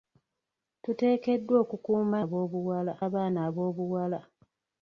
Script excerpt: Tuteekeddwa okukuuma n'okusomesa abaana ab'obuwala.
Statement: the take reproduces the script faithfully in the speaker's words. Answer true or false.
false